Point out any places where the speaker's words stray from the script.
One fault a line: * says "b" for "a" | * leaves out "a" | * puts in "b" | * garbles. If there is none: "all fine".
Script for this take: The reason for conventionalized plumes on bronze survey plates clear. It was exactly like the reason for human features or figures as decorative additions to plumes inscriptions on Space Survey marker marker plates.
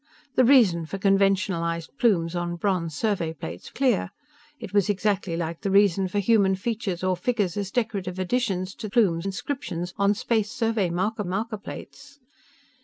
all fine